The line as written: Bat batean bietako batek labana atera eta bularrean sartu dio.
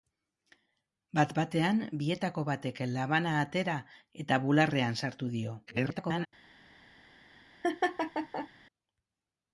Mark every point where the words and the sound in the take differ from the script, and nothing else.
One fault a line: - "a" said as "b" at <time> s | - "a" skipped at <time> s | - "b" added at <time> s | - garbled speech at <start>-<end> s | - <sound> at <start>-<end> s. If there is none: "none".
- garbled speech at 5.7-6.3 s
- laugh at 7.6-8.5 s